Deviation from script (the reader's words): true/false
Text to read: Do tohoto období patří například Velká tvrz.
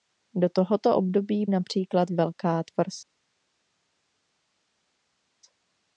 true